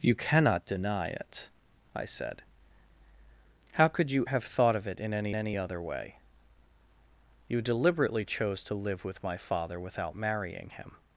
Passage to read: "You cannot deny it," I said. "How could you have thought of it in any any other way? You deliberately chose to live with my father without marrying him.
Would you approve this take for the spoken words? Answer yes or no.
yes